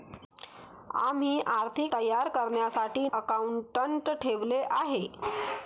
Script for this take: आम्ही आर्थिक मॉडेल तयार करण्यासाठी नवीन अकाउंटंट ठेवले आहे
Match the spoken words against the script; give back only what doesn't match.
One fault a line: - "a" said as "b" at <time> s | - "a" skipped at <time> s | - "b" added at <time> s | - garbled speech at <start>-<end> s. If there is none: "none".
- "मॉडेल" skipped at 1.9 s
- "नवीन" skipped at 3.1 s